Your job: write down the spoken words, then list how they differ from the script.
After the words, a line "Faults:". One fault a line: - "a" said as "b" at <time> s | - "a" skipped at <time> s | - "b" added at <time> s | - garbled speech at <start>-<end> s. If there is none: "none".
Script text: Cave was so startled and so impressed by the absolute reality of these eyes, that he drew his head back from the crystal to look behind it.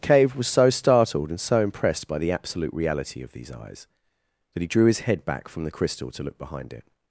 Cave was so startled and so impressed by the absolute reality of these eyes, that he drew his head back from the crystal to look behind it.
Faults:
none